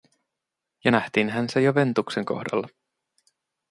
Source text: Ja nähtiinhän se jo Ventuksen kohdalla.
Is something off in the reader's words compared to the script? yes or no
no